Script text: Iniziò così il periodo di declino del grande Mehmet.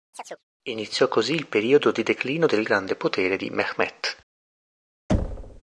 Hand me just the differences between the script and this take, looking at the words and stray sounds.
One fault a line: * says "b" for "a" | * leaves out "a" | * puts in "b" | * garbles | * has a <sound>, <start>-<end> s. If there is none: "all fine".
* has a chirp, 0.1-0.4 s
* puts in "potere di"
* has a thud, 5.1-5.6 s